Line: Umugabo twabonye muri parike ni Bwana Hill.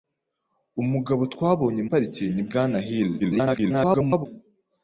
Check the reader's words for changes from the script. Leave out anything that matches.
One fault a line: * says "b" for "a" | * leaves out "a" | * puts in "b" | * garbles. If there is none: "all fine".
* leaves out "muri"
* garbles